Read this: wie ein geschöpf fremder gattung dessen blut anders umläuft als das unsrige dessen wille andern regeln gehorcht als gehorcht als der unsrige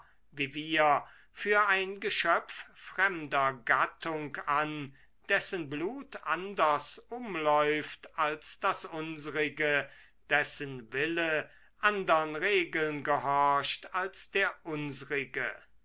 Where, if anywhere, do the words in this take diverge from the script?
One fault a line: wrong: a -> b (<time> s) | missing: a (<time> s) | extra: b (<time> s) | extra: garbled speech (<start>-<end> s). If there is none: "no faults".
extra: wir für (0.6 s)
extra: an (4.5 s)
missing: gehorcht als (14.3 s)